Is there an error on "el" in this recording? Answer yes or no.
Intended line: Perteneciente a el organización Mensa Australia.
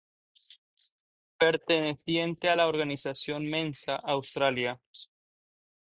yes